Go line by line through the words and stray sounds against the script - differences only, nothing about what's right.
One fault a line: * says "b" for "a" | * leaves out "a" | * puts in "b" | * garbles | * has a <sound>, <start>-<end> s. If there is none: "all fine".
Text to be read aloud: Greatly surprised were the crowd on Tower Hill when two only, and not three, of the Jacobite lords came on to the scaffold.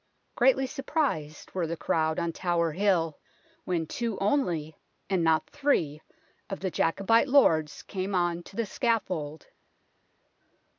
all fine